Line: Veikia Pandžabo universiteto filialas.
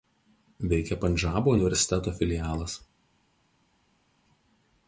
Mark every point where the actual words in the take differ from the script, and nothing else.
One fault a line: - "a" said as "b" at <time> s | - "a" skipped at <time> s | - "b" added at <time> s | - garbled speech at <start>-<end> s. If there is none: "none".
none